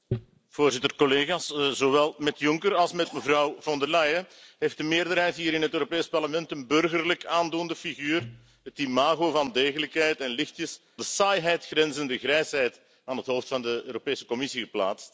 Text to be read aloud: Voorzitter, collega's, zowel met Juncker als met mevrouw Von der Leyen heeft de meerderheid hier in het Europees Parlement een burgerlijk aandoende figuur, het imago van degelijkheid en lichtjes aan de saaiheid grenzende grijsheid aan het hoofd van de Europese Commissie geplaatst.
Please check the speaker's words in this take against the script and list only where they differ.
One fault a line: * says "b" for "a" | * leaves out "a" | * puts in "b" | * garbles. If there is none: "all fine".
* leaves out "aan"